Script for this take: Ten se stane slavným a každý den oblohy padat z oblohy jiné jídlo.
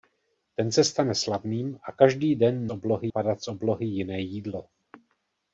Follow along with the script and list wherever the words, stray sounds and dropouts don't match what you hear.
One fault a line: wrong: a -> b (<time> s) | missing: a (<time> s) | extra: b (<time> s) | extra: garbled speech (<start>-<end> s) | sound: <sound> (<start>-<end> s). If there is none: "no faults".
no faults